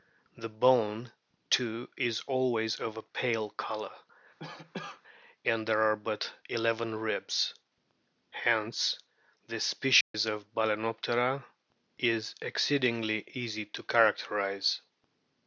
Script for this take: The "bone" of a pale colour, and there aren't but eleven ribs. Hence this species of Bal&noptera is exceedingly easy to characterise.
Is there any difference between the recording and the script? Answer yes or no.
yes